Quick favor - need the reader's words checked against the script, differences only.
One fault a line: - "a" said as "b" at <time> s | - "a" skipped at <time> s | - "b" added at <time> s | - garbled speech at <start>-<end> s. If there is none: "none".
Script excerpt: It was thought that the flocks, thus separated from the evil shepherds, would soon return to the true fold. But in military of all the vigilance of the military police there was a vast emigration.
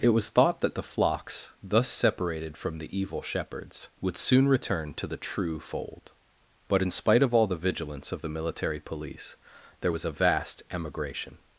- "military" said as "spite" at 6.9 s